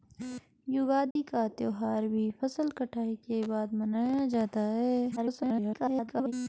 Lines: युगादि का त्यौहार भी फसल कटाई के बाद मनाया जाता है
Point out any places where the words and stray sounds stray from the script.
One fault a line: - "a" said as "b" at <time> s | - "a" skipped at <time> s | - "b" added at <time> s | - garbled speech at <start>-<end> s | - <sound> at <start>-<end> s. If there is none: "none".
- dropout at 1.1-1.2 s
- garbled speech at 5.2-6.3 s